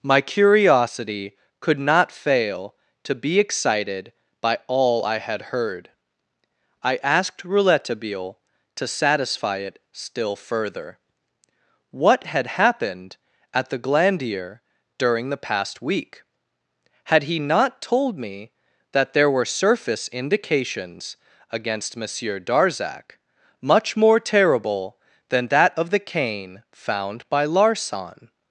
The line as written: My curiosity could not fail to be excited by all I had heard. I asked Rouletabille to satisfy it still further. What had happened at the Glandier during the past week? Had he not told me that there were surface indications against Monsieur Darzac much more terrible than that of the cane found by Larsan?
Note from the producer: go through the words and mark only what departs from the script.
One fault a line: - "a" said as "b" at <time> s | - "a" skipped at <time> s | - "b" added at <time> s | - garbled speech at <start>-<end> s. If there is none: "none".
none